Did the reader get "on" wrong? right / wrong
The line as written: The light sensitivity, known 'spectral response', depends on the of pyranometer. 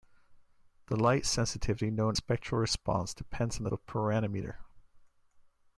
right